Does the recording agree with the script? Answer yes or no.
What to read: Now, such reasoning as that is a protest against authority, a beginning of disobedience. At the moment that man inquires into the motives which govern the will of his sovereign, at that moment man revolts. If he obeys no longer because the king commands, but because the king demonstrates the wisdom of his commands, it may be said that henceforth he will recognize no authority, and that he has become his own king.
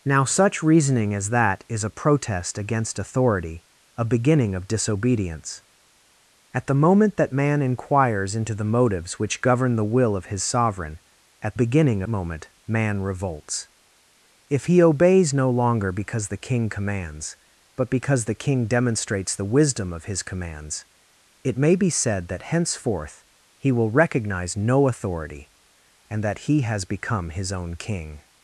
no